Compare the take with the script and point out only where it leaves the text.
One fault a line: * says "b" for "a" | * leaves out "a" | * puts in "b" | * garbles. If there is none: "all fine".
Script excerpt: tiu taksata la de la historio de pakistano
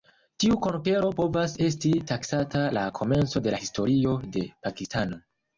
* puts in "konkero povas esti"
* puts in "komenco"